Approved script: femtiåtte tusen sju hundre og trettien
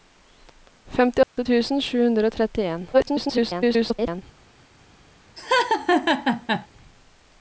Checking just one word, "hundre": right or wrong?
right